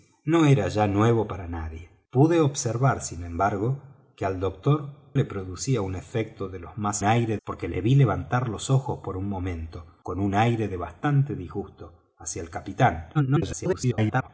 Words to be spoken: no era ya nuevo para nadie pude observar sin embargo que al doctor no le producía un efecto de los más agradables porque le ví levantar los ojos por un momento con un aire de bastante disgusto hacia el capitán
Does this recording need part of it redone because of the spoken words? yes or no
yes